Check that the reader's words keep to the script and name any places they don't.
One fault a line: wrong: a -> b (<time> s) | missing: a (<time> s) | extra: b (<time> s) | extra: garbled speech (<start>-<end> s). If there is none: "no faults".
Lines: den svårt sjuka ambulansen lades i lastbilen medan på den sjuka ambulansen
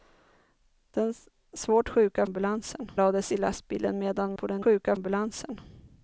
no faults